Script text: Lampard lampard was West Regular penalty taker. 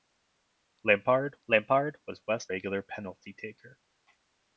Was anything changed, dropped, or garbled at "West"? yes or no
no